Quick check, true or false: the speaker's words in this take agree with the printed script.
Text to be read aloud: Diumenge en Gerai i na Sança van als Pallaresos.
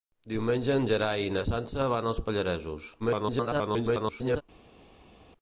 false